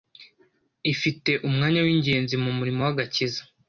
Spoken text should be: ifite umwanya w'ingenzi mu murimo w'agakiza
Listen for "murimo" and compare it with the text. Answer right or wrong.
right